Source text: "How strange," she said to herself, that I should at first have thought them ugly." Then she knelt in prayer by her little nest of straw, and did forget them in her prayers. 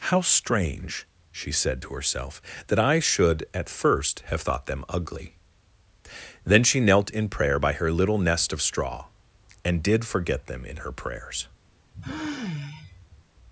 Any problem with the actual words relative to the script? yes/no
no